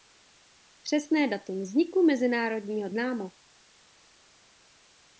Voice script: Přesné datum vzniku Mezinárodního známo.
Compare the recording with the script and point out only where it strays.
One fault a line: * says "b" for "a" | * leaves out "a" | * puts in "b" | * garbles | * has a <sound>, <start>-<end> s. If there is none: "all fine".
all fine